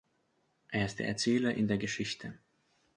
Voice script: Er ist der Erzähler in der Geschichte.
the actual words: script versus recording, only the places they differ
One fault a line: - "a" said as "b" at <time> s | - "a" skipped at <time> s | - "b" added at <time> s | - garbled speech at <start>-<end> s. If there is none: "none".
none